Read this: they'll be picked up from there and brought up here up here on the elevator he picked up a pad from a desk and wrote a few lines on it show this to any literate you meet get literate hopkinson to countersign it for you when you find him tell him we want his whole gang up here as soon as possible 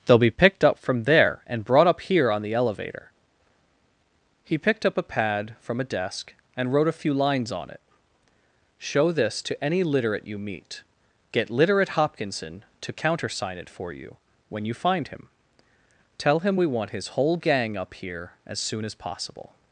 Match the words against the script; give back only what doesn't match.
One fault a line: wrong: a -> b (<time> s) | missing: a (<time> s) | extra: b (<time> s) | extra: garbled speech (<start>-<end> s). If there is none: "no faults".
missing: up here (2.3 s)